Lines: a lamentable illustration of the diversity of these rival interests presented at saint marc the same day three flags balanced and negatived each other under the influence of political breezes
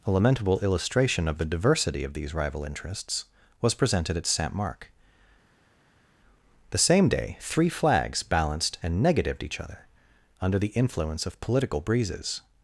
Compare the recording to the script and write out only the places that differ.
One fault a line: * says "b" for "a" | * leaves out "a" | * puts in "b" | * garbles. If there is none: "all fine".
* puts in "was"